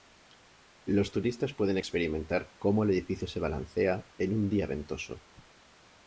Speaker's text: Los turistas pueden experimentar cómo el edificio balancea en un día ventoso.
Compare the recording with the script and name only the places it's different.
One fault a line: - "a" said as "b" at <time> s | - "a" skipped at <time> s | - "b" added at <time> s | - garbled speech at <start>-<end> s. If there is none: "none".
- "se" added at 3.3 s